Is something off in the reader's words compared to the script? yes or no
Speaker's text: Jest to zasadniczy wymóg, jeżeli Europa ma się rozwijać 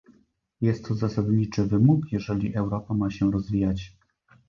no